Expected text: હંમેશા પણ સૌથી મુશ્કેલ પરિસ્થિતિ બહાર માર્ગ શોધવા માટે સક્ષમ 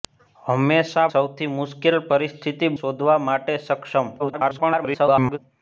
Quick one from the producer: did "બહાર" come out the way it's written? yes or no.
no